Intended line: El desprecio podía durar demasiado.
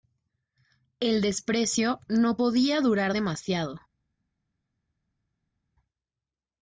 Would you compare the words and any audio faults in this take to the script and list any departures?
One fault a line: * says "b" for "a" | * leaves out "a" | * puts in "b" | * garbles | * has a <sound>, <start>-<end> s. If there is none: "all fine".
* puts in "no"